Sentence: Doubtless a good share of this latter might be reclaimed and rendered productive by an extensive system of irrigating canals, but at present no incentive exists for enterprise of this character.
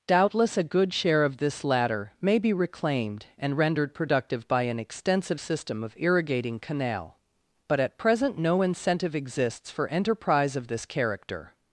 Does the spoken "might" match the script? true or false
false